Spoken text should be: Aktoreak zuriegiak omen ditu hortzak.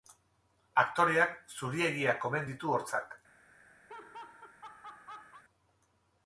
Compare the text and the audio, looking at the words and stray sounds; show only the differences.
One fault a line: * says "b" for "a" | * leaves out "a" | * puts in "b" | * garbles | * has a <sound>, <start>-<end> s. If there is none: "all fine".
* has a laugh, 3.9-5.4 s